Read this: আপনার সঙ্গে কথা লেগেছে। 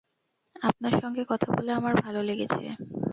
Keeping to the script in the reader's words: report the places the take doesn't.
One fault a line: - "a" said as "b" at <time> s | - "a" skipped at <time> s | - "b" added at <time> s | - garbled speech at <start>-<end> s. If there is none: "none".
- "বলে আমার ভালো" added at 1.5 s